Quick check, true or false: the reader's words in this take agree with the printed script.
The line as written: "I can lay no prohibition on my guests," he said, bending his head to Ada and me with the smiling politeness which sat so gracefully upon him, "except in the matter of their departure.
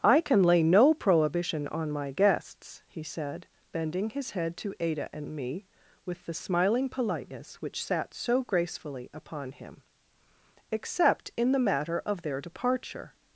true